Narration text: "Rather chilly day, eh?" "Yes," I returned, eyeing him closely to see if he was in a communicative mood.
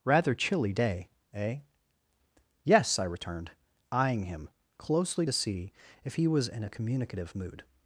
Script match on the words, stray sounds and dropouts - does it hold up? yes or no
yes